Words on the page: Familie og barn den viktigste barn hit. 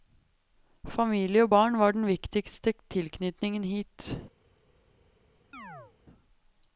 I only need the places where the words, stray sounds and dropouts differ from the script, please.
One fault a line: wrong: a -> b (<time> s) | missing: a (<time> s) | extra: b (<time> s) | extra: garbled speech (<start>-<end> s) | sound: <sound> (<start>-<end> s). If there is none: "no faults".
extra: var (1.8 s)
wrong: barn -> tilknytningen (2.9 s)
sound: chirp (5.5-5.9 s)